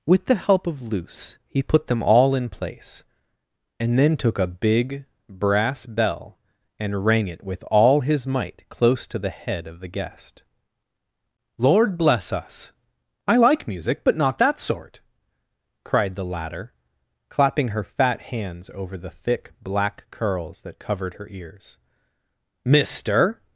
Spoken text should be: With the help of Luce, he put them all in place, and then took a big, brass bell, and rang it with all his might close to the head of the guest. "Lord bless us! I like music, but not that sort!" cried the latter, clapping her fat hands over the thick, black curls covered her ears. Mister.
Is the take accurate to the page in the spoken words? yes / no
no